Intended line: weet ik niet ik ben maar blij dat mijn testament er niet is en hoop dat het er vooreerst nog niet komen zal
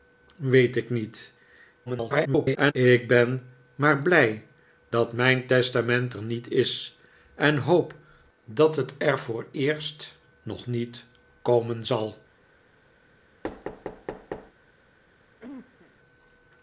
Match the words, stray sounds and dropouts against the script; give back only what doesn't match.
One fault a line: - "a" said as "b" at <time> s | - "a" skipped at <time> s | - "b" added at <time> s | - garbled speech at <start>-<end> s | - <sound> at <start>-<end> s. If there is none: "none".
- garbled speech at 1.9-2.7 s
- thud at 13.4-14.5 s
- cough at 15.4-16.0 s